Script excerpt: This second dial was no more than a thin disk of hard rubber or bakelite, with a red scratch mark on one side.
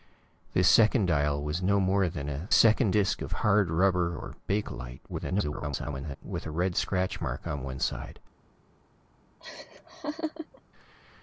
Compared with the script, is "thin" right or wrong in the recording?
wrong